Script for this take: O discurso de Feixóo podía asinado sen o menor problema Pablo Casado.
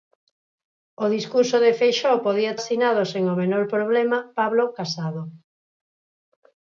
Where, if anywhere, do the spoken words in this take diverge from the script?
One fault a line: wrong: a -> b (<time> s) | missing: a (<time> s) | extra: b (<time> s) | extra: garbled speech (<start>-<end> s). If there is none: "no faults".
no faults